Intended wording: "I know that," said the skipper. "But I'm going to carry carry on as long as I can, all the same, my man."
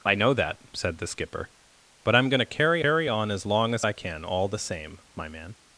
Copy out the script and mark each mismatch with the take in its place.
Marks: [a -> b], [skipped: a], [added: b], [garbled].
"I know that," said the skipper. "But I'm going to carry carry on as long as I can, all the same, my man."